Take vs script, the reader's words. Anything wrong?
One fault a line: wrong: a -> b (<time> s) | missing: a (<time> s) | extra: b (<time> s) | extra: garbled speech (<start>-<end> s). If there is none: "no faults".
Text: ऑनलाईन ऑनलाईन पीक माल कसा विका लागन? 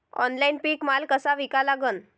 missing: ऑनलाईन (0.6 s)